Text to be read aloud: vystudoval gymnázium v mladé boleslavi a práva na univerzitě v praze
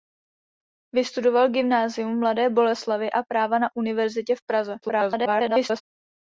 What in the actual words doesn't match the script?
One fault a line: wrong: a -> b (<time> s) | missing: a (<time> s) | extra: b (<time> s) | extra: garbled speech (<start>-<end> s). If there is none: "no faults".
extra: garbled speech (4.8-5.8 s)